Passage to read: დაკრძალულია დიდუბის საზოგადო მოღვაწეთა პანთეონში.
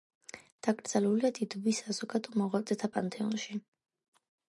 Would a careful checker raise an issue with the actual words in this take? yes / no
no